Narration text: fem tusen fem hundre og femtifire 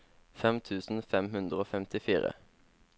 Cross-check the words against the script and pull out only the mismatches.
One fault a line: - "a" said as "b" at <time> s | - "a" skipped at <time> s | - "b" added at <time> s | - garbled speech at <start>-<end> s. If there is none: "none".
none